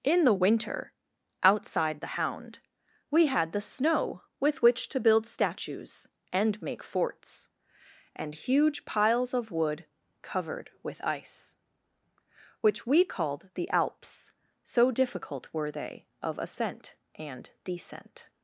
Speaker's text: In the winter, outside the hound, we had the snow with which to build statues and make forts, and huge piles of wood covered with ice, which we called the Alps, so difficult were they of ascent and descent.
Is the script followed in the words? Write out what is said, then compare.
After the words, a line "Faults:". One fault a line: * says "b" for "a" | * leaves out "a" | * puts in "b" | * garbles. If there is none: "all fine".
In the winter, outside the hound, we had the snow with which to build statues and make forts, and huge piles of wood covered with ice, which we called the Alps, so difficult were they of ascent and descent.
Faults:
all fine